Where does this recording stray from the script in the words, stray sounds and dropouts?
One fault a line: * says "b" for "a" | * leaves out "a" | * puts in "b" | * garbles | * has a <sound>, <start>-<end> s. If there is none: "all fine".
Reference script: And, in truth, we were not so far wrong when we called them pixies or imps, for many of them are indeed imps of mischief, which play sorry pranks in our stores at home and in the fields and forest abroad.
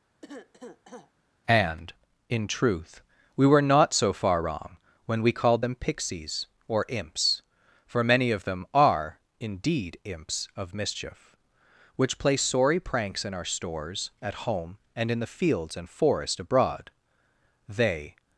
* has a cough, 0.2-1.1 s
* puts in "They"